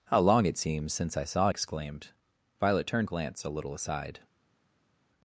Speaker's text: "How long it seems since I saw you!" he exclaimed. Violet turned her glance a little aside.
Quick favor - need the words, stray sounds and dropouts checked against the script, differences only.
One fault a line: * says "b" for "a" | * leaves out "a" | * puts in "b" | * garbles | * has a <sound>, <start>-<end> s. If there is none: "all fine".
* leaves out "you he"
* leaves out "her"